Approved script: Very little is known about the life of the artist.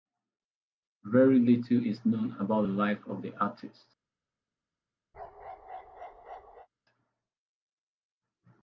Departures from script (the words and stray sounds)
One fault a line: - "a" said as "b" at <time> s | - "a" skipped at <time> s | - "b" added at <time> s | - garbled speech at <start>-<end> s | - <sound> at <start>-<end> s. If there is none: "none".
- bark at 5.1-6.7 s